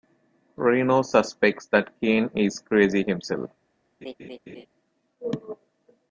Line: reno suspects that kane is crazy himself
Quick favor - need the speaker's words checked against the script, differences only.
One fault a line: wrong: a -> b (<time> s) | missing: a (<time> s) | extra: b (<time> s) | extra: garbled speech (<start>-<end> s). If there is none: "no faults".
no faults